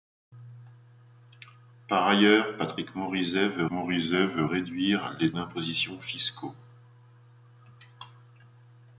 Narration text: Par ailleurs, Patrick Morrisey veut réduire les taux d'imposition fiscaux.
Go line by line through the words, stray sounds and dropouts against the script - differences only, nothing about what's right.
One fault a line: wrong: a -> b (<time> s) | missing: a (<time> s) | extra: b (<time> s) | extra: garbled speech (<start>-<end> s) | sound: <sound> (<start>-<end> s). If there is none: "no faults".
extra: Morrisey veut (3.7 s)
missing: taux (5.3 s)